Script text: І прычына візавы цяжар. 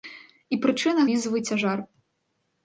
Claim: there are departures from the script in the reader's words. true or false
false